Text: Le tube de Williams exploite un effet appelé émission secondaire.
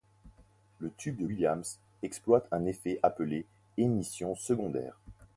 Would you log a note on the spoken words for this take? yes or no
no